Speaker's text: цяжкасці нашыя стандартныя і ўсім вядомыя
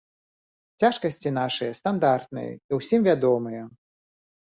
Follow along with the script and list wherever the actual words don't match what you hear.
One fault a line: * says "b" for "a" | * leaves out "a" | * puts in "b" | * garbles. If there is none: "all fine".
all fine